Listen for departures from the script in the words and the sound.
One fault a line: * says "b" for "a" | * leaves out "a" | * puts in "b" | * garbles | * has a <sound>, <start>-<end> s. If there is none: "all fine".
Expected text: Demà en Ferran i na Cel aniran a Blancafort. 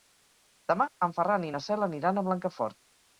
all fine